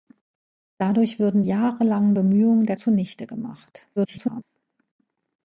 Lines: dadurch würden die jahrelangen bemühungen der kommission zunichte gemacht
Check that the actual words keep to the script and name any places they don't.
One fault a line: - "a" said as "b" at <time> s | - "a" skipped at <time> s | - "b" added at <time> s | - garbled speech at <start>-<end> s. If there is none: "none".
- "die" skipped at 1.4 s
- "kommission" skipped at 2.8 s
- garbled speech at 4.0-4.4 s